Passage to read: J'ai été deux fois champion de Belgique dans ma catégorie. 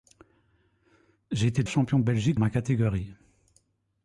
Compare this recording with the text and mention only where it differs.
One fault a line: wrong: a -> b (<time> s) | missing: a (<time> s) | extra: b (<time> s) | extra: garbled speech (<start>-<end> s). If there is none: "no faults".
missing: deux fois (1.6 s)
missing: dans (2.4 s)